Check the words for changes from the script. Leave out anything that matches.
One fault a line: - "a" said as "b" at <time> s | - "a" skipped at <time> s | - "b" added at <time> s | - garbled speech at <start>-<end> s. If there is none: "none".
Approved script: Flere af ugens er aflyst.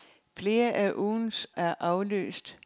none